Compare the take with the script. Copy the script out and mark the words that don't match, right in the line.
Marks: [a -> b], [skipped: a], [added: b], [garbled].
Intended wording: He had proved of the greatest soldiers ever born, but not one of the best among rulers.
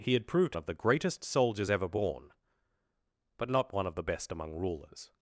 He had proved of the greatest soldiers ever born, but not one of the best among rulers.